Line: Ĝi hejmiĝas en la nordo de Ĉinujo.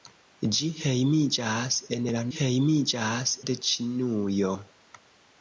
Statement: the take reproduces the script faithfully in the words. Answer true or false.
false